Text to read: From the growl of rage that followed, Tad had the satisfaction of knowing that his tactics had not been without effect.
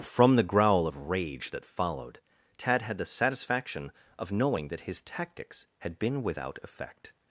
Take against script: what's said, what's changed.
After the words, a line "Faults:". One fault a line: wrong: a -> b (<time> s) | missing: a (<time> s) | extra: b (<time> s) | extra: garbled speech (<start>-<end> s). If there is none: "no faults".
From the growl of rage that followed, Tad had the satisfaction of knowing that his tactics had been without effect.
Faults:
missing: not (6.0 s)